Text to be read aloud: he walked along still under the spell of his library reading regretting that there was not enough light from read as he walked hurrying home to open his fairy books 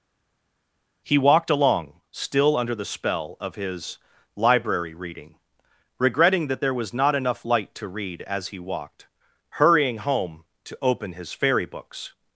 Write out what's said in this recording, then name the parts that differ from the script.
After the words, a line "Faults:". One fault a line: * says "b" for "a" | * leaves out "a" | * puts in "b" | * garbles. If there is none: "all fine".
he walked along still under the spell of his library reading regretting that there was not enough light to read as he walked hurrying home to open his fairy books
Faults:
* says "to" for "from"